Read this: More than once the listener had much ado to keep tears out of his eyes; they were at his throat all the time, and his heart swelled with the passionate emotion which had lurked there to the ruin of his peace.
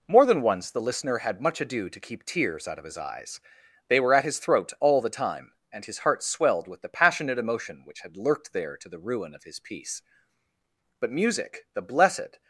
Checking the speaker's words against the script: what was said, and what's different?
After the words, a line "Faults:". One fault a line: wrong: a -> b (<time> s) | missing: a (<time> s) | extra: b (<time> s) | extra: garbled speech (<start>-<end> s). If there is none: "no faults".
More than once the listener had much ado to keep tears out of his eyes; they were at his throat all the time, and his heart swelled with the passionate emotion which had lurked there to the ruin of his peace. But music, the blessed
Faults:
extra: But music the blessed (11.0 s)